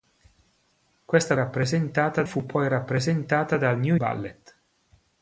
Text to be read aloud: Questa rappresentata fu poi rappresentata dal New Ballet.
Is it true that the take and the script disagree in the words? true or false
false